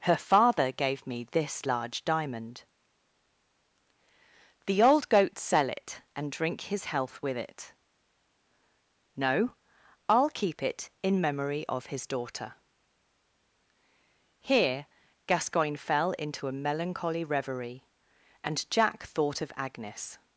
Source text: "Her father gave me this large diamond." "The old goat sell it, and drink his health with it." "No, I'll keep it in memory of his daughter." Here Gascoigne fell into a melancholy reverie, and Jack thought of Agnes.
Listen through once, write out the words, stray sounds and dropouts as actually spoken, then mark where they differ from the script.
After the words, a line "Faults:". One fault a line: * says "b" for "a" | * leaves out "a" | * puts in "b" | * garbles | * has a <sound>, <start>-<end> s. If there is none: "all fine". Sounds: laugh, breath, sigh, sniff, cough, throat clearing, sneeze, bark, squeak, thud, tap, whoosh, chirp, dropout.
"Her father gave me this large diamond." "The old goat sell it, and drink his health with it." "No, I'll keep it in memory of his daughter." Here Gascoigne fell into a melancholy reverie, and Jack thought of Agnes.
Faults:
all fine